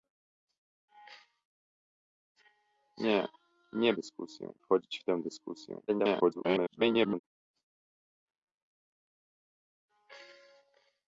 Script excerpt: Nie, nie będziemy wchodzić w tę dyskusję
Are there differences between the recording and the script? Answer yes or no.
yes